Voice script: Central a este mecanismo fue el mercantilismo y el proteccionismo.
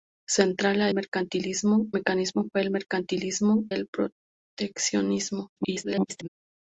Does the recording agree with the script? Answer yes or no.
no